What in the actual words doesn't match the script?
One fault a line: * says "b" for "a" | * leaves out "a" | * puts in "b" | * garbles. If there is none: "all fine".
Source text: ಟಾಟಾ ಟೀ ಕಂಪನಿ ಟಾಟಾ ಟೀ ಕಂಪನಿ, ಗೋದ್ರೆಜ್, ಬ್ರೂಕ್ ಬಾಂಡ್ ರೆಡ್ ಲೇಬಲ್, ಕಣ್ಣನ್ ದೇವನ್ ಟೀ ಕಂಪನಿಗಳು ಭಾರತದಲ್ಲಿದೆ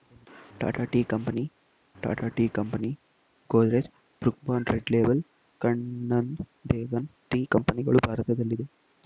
all fine